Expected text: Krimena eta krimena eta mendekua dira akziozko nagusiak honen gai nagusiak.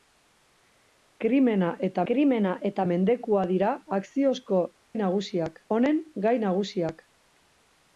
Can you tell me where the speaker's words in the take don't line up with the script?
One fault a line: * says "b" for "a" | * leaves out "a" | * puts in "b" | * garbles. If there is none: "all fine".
all fine